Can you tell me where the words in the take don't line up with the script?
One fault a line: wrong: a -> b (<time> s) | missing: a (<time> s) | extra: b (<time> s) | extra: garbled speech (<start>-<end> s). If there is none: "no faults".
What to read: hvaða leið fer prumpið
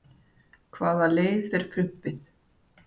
no faults